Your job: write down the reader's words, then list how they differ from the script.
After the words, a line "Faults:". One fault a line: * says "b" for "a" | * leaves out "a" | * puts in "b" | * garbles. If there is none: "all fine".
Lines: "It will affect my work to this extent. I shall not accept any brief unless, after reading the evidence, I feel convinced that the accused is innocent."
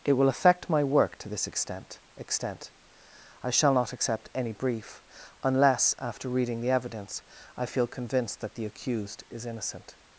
"It will affect my work to this extent extent. I shall not accept any brief unless, after reading the evidence, I feel convinced that the accused is innocent."
Faults:
* puts in "extent"